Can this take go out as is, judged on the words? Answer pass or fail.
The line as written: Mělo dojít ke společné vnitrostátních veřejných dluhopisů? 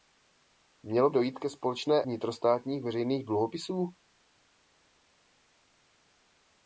pass